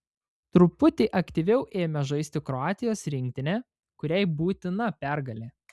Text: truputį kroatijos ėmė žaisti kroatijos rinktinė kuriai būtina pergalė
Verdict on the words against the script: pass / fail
fail